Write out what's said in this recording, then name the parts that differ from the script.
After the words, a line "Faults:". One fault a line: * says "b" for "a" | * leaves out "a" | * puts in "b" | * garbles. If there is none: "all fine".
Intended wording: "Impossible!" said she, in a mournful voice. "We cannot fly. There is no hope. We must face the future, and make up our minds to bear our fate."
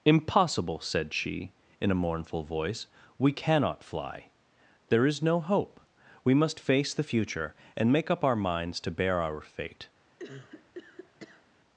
"Impossible!" said she, in a mournful voice. "We cannot fly. There is no hope. We must face the future, and make up our minds to bear our fate."
Faults:
all fine